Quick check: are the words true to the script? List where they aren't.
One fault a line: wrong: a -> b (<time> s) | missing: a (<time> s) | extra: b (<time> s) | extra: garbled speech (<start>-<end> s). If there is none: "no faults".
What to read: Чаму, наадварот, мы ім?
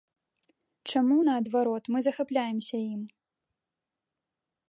extra: захапляемся (2.1 s)